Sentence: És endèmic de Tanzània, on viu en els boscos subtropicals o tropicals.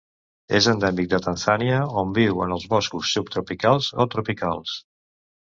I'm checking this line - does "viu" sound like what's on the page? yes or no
yes